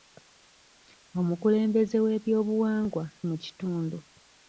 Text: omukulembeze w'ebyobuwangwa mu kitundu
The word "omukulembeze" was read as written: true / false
true